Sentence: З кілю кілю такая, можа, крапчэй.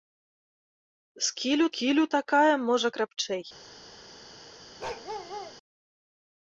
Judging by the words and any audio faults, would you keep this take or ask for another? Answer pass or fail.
fail